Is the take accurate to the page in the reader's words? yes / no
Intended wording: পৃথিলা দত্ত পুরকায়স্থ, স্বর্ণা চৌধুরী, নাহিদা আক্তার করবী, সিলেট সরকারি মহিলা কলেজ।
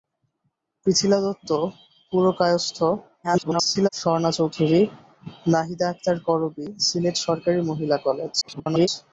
no